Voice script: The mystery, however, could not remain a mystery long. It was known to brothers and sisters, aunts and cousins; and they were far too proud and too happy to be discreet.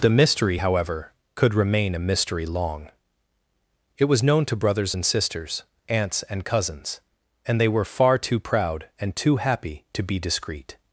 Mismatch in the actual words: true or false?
true